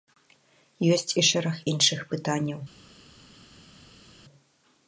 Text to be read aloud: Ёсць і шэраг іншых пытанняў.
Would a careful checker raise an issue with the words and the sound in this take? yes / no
no